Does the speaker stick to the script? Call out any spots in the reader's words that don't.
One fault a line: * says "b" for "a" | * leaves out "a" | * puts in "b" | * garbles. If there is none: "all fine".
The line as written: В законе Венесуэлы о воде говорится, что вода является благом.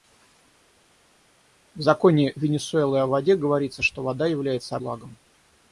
all fine